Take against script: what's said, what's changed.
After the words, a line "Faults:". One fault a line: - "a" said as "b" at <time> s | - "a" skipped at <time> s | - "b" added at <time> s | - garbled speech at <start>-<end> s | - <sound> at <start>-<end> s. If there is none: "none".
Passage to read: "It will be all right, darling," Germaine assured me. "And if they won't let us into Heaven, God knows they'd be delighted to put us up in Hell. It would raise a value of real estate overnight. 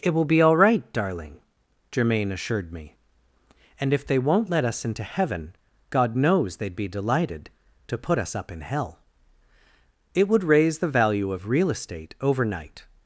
"It will be all right, darling," Germaine assured me. "And if they won't let us into Heaven, God knows they'd be delighted to put us up in Hell. It would raise the value of real estate overnight.
Faults:
- "a" said as "the" at 10.8 s